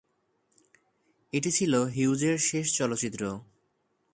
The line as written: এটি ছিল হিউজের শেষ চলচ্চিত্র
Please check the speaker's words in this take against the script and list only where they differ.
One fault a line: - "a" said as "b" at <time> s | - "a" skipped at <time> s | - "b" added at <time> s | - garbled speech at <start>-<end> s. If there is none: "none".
none